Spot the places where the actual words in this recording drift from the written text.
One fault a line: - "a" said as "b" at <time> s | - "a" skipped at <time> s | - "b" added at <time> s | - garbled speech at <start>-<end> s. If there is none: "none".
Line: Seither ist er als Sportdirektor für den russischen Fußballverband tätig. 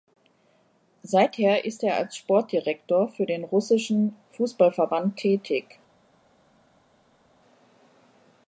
none